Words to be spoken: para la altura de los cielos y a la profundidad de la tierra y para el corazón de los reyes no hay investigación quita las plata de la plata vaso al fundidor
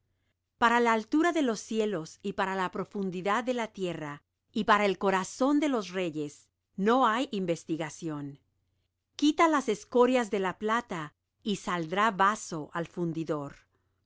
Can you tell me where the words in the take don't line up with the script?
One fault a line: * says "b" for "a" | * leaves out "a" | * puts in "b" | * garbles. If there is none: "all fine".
* says "para" for "a"
* says "escorias" for "plata"
* puts in "y saldrá"